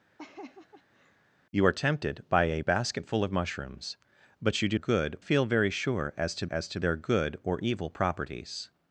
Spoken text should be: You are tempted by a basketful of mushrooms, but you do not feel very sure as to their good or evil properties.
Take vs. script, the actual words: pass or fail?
fail